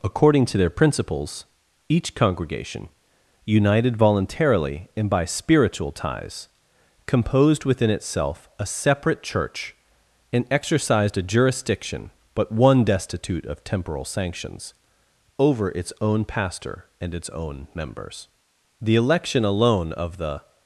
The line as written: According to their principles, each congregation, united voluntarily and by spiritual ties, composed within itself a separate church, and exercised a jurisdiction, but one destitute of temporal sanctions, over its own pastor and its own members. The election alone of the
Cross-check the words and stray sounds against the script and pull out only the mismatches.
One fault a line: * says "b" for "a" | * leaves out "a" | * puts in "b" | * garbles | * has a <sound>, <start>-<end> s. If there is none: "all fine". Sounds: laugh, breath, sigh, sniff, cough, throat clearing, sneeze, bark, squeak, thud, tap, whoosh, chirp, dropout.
all fine